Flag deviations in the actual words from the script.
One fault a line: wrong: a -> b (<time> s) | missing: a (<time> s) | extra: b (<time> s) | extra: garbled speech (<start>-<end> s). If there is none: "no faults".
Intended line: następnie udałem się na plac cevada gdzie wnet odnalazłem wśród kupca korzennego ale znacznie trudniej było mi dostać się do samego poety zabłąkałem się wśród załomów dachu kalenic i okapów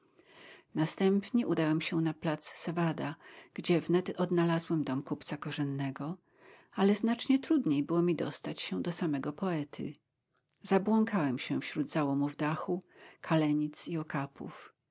wrong: wśród -> dom (4.8 s)